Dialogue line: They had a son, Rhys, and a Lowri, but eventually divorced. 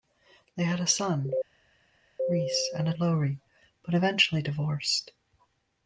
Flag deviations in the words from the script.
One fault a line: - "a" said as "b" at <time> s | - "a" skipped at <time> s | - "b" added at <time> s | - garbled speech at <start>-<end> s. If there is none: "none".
none